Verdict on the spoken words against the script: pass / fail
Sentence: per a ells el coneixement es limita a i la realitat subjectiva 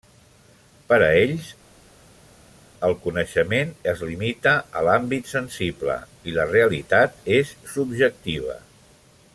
fail